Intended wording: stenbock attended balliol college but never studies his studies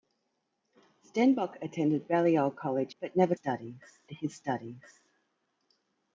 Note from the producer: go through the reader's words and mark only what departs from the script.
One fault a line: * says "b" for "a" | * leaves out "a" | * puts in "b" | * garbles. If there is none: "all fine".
all fine